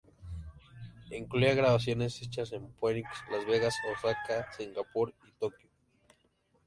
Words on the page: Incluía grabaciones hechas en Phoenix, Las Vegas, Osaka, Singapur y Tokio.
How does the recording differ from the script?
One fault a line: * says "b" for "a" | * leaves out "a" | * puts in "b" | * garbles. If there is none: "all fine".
all fine